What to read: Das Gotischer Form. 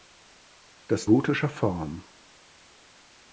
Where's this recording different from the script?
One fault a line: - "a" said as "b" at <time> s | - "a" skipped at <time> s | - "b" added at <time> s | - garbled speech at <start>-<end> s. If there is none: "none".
none